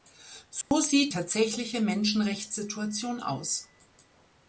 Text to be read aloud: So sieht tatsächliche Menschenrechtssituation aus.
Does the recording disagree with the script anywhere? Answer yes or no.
no